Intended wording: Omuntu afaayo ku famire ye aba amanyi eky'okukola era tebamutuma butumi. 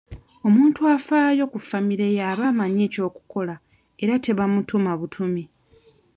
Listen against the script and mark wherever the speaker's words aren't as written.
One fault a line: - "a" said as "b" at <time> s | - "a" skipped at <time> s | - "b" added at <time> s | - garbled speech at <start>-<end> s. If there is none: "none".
none